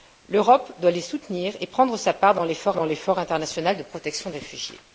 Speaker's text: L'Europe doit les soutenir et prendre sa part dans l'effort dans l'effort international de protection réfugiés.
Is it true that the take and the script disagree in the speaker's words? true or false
false